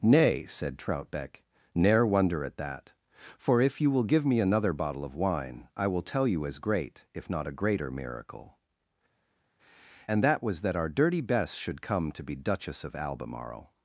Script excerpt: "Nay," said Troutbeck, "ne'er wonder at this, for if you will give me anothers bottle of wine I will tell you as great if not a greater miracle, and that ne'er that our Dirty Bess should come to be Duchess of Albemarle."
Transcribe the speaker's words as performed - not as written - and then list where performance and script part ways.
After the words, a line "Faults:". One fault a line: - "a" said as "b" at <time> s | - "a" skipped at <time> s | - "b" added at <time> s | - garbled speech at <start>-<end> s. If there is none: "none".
"Nay," said Troutbeck, "ne'er wonder at that, for if you will give me another bottle of wine I will tell you as great if not a greater miracle, and that was that our Dirty Bess should come to be Duchess of Albemarle."
Faults:
- "this" said as "that" at 2.6 s
- "anothers" said as "another" at 4.4 s
- "ne'er" said as "was" at 10.4 s